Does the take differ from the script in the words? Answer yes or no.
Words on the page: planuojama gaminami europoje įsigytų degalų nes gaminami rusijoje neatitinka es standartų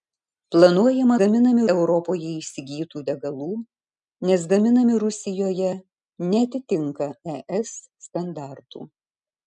no